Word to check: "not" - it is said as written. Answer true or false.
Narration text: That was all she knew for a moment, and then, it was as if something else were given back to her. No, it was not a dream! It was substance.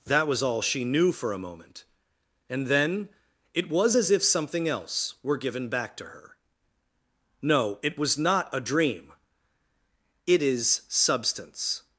true